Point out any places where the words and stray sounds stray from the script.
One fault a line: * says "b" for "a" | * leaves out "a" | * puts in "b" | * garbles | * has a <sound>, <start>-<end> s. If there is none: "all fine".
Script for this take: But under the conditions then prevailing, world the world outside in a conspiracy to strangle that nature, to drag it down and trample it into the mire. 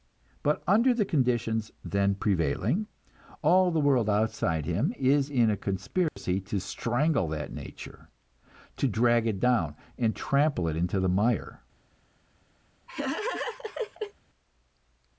* says "all" for "world"
* puts in "him is"
* has a dropout, 6.1-6.2 s
* has a laugh, 12.9-14.1 s